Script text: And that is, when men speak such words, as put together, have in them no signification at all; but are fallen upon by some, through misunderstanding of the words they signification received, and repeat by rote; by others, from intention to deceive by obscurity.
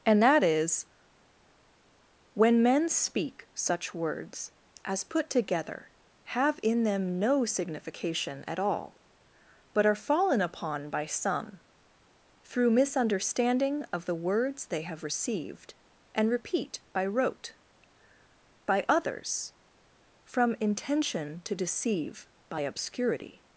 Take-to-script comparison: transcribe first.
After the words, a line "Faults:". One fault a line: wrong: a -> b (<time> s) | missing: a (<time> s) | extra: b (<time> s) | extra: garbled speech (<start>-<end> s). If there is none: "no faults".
And that is, when men speak such words, as put together, have in them no signification at all; but are fallen upon by some, through misunderstanding of the words they have received, and repeat by rote; by others, from intention to deceive by obscurity.
Faults:
wrong: signification -> have (14.8 s)